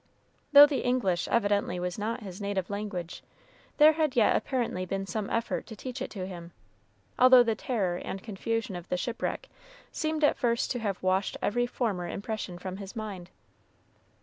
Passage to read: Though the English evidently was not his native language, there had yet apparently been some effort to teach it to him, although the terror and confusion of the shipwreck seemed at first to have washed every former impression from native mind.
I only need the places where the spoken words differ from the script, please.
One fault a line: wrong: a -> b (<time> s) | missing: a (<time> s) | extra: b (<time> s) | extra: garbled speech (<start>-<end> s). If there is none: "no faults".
wrong: native -> his (12.8 s)